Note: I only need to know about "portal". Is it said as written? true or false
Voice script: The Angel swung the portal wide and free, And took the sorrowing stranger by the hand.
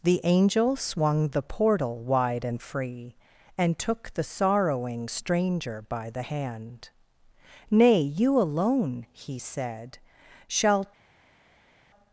true